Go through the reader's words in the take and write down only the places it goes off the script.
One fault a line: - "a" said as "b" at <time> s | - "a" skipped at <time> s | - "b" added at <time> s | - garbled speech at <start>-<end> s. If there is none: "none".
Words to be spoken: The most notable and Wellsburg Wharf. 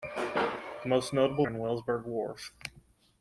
none